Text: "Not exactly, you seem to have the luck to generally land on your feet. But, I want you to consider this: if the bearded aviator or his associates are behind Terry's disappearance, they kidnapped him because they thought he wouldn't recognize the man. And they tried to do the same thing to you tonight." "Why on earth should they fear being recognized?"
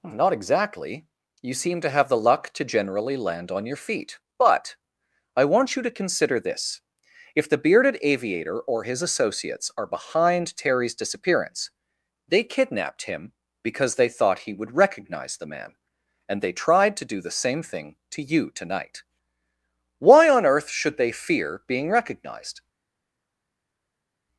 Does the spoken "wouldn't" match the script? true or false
false